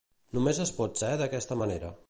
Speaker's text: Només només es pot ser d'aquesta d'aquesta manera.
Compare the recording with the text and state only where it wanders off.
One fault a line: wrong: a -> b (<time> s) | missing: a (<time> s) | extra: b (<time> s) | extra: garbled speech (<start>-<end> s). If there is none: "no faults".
missing: només (0.6 s)
missing: d'aquesta (1.6 s)